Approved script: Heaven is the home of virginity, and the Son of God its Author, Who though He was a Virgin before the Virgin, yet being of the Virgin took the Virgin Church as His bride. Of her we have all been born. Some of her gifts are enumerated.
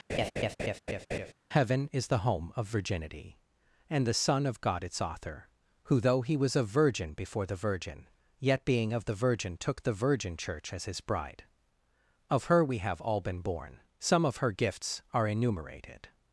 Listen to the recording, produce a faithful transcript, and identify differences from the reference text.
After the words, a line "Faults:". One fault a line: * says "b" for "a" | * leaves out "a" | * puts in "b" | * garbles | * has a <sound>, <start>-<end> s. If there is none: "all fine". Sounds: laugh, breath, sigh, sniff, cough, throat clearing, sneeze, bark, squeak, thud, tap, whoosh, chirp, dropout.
Heaven is the home of virginity, and the Son of God its Author, Who though He was a Virgin before the Virgin, yet being of the Virgin took the Virgin Church as His bride. Of her we have all been born. Some of her gifts are enumerated.
Faults:
* has a laugh, 0.1-1.3 s